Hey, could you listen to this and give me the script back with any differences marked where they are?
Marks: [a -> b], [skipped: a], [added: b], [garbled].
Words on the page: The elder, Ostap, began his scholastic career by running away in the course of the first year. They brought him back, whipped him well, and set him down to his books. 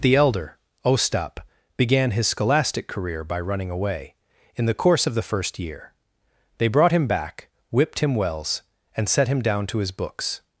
The elder, Ostap, began his scholastic career by running away in the course of the first year. They brought him back, whipped him [well, -> wells] and set him down to his books.